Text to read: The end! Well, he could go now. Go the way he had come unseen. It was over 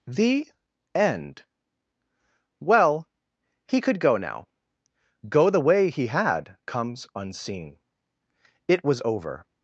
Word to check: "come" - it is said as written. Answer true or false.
false